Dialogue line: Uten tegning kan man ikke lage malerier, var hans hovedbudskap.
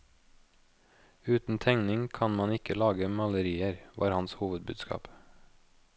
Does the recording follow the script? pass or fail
pass